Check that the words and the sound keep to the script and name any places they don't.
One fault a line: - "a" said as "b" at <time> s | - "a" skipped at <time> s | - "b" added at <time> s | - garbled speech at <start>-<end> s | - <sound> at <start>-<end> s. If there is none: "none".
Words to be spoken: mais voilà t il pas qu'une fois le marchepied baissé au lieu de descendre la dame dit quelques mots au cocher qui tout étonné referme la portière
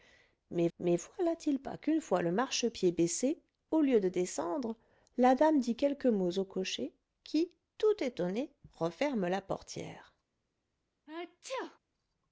- "mais" added at 0.8 s
- sneeze at 11.1-11.8 s